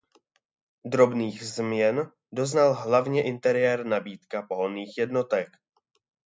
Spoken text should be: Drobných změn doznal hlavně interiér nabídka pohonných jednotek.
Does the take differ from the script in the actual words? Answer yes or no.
no